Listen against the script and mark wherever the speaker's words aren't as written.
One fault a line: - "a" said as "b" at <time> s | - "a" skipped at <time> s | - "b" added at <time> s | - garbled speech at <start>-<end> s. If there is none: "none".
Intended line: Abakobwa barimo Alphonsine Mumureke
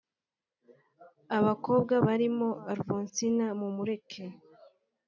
none